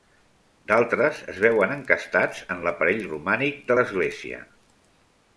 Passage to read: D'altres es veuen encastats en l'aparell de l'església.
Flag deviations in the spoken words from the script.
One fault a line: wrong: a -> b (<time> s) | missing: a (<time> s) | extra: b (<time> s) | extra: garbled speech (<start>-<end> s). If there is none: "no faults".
extra: romànic (3.1 s)